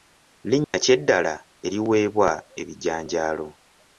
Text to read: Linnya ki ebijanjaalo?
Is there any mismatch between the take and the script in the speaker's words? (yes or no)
yes